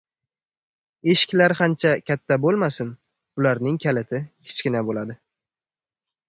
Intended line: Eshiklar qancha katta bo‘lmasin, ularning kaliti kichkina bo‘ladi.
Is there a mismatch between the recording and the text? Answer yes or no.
no